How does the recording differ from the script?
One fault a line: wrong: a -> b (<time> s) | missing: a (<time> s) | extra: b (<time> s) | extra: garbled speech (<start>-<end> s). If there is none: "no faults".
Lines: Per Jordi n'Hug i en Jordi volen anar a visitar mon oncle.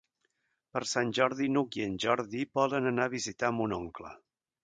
extra: Sant (0.9 s)